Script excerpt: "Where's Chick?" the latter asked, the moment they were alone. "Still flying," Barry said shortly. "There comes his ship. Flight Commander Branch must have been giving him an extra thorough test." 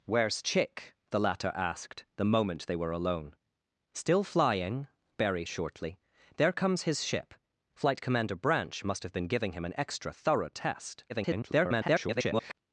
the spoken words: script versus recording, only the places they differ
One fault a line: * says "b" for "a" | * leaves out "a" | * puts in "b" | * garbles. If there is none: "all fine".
* leaves out "said"
* garbles